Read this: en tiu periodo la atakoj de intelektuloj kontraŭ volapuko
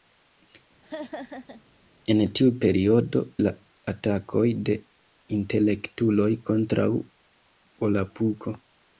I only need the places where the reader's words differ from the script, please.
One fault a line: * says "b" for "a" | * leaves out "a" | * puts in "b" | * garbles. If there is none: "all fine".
all fine